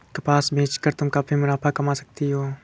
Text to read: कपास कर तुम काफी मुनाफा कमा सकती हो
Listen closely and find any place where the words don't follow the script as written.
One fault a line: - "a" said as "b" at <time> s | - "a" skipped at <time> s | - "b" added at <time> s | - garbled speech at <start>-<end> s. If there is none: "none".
- "बेच" added at 0.5 s